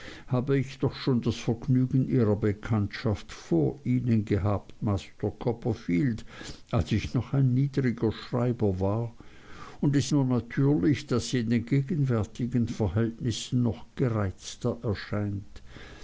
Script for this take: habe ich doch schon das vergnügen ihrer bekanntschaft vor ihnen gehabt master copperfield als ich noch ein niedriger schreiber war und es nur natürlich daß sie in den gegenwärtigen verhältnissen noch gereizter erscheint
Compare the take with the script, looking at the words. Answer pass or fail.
pass